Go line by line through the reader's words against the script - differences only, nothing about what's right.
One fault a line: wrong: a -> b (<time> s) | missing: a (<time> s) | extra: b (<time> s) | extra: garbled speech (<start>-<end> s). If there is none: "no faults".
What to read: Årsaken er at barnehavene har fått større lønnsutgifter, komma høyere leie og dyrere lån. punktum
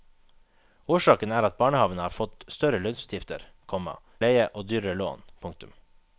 missing: høyere (4.0 s)